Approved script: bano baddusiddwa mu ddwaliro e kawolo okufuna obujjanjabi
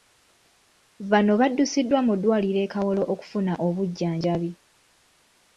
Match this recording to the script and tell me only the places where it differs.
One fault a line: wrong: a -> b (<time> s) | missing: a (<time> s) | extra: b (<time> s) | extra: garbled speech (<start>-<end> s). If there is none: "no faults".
no faults